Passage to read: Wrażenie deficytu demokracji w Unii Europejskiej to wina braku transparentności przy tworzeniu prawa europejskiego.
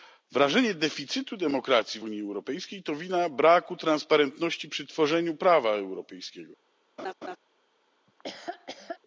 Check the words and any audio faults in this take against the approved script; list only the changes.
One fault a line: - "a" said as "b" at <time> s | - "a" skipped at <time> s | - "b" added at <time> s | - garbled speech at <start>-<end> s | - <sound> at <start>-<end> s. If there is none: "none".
- laugh at 7.0-7.4 s
- laugh at 8.1-9.0 s